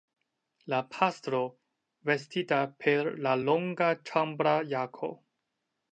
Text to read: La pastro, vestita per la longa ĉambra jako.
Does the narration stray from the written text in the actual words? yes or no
no